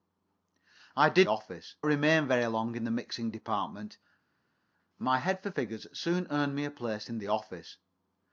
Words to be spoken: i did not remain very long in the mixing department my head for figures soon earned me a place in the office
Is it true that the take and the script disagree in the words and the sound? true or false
true